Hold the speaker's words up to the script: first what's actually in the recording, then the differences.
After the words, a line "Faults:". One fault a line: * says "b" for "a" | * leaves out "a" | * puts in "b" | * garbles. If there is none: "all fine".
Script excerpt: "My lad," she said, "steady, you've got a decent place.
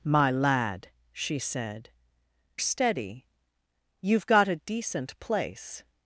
"My lad," she said, "steady, you've got a decent place.
Faults:
all fine